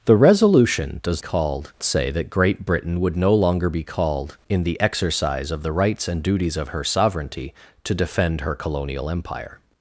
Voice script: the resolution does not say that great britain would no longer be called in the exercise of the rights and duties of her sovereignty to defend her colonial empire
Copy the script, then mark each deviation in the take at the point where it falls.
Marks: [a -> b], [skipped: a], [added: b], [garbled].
the resolution does [not -> called] say that great britain would no longer be called in the exercise of the rights and duties of her sovereignty to defend her colonial empire